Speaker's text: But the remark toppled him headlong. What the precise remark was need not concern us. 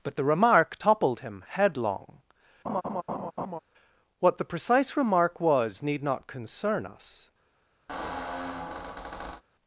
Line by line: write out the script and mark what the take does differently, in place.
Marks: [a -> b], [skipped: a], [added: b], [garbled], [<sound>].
But the remark toppled him headlong. [laugh] What the precise remark was need not concern us. [squeak]